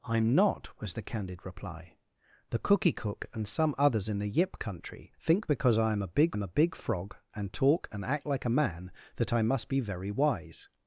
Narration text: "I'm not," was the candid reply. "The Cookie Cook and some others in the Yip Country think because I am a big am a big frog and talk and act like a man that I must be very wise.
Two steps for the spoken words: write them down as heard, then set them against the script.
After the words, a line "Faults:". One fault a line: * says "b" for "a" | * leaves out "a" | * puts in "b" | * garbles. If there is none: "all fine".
"I'm not," was the candid reply. "The Cookie Cook and some others in the Yip Country think because I am a big am a big frog and talk and act like a man that I must be very wise.
Faults:
all fine